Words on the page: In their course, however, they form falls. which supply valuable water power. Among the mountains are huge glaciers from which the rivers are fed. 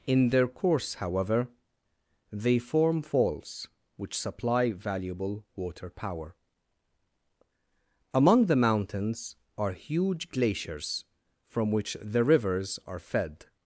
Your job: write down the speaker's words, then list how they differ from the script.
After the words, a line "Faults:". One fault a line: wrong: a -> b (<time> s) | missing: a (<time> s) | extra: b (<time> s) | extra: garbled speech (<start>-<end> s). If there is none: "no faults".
In their course, however, they form falls. which supply valuable water power. Among the mountains are huge glaciers from which the rivers are fed.
Faults:
no faults